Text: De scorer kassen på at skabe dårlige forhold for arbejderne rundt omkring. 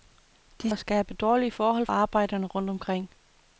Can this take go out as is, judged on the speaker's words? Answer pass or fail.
fail